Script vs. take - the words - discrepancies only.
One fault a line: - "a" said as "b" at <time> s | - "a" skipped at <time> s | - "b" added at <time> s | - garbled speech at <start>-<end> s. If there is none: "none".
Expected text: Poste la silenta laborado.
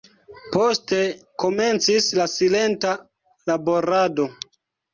- "komencis" added at 1.4 s